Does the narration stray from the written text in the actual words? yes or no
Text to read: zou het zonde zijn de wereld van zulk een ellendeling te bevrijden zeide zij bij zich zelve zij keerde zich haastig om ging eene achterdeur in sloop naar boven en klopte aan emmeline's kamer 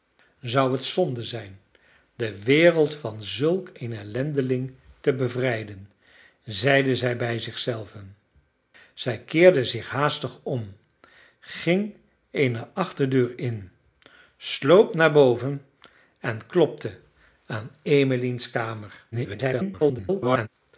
yes